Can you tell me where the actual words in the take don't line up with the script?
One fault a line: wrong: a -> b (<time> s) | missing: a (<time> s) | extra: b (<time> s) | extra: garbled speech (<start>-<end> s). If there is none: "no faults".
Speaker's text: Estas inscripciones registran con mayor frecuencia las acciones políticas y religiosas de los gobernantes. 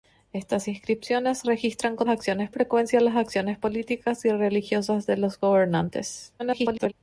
wrong: mayor -> acciones (2.1 s)
extra: garbled speech (6.4-6.9 s)